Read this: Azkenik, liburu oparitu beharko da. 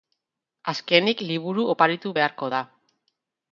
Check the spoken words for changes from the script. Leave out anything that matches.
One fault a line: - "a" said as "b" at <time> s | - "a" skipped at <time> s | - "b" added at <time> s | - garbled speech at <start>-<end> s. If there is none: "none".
none